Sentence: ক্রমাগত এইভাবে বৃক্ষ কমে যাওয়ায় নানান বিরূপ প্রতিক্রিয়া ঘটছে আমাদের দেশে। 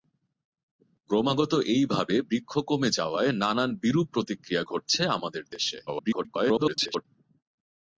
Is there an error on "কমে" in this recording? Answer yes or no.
no